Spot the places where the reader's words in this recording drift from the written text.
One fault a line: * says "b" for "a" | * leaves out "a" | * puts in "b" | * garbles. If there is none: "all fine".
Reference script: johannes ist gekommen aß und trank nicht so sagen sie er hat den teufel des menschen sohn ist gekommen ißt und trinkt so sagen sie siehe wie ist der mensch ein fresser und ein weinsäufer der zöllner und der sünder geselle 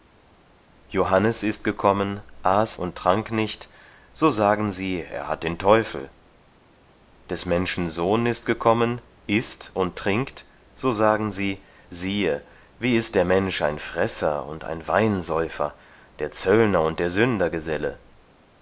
all fine